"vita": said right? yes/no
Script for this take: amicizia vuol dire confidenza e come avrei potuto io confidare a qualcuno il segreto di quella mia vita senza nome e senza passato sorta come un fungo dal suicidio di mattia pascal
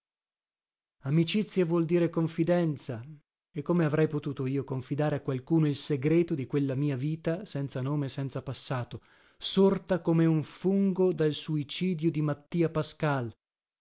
yes